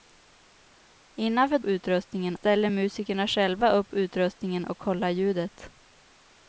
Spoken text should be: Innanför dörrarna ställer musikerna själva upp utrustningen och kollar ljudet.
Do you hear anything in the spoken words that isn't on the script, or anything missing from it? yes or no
yes